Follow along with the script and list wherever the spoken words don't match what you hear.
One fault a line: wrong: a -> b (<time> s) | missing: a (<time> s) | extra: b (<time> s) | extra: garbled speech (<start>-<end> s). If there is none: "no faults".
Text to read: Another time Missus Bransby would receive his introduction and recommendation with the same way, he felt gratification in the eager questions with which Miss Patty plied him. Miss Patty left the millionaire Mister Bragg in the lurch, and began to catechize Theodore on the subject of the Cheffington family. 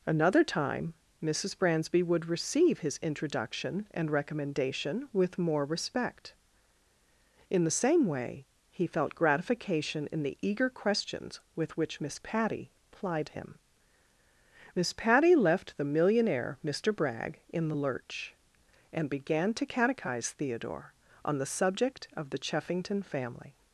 extra: more respect In (5.4 s)